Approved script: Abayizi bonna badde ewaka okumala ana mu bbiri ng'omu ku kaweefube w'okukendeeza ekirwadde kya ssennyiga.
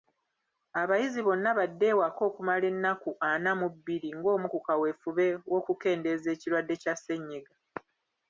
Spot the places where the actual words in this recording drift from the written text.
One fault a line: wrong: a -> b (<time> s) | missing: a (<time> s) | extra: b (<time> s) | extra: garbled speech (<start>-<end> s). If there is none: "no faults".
extra: ennaku (2.7 s)